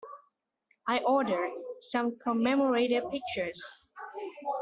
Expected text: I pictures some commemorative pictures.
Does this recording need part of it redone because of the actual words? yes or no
yes